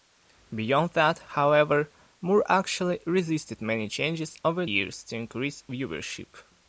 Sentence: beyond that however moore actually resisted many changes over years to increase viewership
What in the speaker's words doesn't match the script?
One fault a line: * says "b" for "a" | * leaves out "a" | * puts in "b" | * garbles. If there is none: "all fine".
all fine